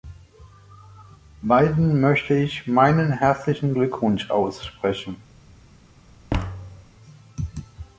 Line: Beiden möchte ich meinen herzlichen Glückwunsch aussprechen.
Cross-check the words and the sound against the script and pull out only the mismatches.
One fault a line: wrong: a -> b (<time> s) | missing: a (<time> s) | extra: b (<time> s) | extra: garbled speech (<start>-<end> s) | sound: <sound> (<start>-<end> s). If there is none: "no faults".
sound: thud (6.3-6.9 s)